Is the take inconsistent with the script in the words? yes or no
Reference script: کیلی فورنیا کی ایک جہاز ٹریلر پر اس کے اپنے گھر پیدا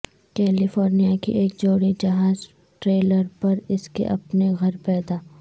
yes